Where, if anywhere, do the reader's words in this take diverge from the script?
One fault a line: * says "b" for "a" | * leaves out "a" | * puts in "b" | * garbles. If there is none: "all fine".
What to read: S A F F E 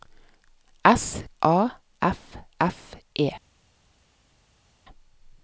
all fine